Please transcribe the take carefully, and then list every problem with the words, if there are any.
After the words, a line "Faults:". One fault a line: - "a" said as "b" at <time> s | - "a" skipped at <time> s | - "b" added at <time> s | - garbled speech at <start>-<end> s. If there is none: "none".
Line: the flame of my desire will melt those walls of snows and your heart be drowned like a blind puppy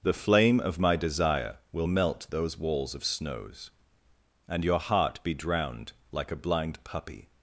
the flame of my desire will melt those walls of snows and your heart be drowned like a blind puppy
Faults:
none